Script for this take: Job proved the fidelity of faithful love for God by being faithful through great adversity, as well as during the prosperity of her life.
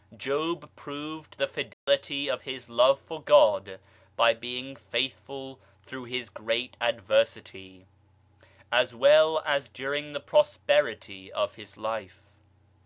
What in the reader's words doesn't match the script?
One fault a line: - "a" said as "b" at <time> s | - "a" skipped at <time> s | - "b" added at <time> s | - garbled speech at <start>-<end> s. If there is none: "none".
- "faithful" said as "his" at 2.4 s
- "his" added at 6.0 s
- "her" said as "his" at 11.5 s